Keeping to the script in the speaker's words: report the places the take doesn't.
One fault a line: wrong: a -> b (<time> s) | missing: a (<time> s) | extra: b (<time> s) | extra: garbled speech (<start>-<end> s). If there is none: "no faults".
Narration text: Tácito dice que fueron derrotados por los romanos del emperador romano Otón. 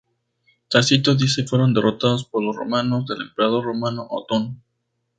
missing: que (1.4 s)